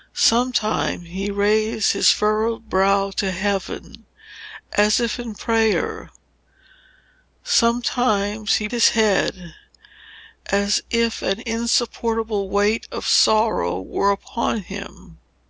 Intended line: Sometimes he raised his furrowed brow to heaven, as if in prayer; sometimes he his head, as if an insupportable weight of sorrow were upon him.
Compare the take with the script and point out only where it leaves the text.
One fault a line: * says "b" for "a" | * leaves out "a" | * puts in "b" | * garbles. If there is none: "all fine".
all fine